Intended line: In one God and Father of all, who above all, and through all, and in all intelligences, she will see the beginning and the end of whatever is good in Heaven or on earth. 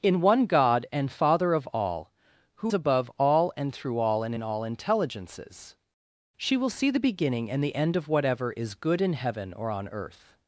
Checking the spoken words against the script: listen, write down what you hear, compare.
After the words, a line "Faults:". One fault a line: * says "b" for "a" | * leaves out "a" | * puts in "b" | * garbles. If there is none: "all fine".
In one God and Father of all, who above all, and through all, and in all intelligences, she will see the beginning and the end of whatever is good in Heaven or on earth.
Faults:
all fine